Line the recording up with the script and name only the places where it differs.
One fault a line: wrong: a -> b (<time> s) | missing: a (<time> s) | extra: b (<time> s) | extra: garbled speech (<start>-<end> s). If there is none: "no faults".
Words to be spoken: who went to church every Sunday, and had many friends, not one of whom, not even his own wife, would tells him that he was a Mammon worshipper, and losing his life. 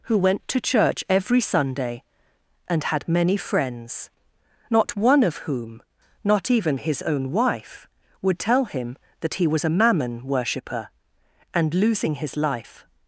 wrong: tells -> tell (8.4 s)